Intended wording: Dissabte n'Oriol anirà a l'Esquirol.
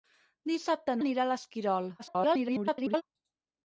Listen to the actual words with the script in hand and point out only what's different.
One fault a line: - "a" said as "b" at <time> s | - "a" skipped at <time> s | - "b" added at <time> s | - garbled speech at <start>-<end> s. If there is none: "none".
- "n'Oriol" skipped at 0.9 s
- garbled speech at 2.0-3.0 s